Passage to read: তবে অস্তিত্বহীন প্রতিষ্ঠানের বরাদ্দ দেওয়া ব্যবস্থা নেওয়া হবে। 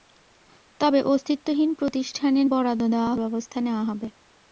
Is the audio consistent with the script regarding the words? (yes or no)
yes